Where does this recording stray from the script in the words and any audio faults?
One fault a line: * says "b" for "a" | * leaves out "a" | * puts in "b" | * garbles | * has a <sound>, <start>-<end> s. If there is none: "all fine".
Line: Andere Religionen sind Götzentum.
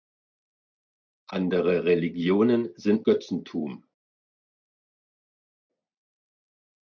all fine